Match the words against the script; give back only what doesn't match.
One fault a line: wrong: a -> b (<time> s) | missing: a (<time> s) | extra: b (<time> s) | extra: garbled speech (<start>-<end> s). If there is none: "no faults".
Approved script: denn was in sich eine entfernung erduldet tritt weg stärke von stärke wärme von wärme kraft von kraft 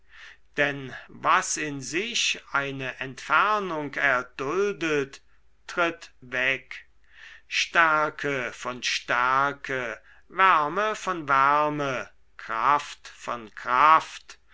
no faults